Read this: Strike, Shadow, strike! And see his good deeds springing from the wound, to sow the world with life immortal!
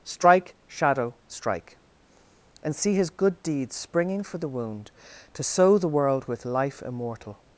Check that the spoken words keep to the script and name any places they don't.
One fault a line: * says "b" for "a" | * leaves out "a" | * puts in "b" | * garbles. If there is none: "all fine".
* says "for" for "from"